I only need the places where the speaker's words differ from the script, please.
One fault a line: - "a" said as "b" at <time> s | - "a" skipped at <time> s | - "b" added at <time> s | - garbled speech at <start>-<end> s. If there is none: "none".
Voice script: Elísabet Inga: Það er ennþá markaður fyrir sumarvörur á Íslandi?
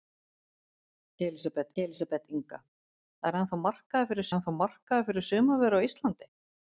- "elísabet" added at 1.8 s
- "ennþá markaður fyrir" added at 4.3 s